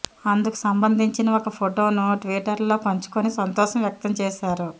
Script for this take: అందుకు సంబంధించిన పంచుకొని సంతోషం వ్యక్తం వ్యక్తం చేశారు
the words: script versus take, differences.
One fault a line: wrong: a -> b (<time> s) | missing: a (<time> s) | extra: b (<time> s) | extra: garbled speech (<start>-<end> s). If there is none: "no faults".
extra: ఒక ఫొటోను ట్విటర్లో (1.3 s)
missing: వ్యక్తం (4.1 s)